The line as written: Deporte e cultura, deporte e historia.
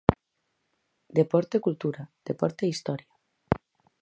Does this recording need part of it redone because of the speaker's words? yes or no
no